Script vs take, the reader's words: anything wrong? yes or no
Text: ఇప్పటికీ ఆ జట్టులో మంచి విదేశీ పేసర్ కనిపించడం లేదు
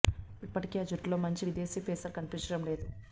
no